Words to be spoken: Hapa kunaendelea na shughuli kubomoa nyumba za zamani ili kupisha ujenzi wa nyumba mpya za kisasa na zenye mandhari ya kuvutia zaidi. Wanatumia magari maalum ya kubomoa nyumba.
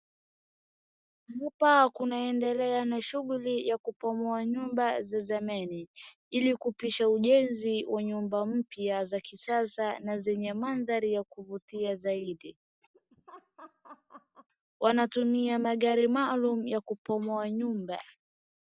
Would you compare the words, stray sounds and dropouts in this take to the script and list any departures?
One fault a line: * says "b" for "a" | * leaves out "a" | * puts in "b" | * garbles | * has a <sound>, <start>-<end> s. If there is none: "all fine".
* puts in "ya"
* has a laugh, 12.9-14.5 s